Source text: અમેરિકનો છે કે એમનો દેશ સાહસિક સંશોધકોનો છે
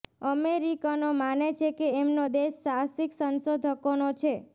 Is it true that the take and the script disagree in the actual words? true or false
true